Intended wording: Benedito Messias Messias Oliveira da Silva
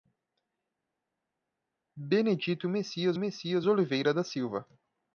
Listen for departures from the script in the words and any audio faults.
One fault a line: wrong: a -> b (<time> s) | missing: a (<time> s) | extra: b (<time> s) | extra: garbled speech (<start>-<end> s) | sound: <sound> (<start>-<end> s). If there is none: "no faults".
no faults